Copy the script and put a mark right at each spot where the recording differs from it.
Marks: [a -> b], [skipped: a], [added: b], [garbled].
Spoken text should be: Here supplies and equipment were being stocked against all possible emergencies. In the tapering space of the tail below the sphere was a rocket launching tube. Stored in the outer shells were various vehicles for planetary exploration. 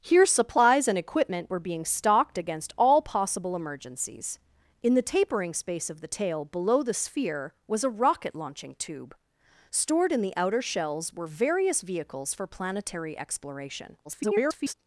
Here supplies and equipment were being stocked against all possible emergencies. In the tapering space of the tail below the sphere was a rocket launching tube. Stored in the outer shells were various vehicles for planetary exploration. [garbled]